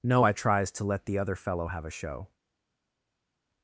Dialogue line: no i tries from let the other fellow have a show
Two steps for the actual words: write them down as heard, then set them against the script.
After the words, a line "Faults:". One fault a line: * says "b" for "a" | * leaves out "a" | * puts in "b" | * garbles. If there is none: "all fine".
no i tries to let the other fellow have a show
Faults:
* says "to" for "from"